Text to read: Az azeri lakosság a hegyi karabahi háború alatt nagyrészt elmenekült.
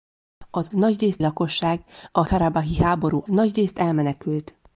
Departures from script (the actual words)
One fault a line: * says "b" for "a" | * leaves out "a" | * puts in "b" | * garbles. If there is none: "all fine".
* says "nagyrészt" for "azeri"
* leaves out "hegyi"
* leaves out "alatt"